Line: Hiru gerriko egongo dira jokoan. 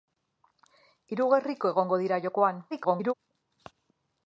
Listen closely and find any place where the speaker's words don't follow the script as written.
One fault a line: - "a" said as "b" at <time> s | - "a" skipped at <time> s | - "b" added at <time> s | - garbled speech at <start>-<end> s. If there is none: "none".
- garbled speech at 2.7-3.1 s